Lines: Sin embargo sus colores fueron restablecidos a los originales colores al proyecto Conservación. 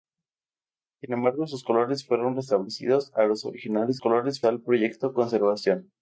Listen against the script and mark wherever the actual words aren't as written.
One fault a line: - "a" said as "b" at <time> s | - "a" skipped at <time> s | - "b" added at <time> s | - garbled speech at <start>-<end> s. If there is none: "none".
none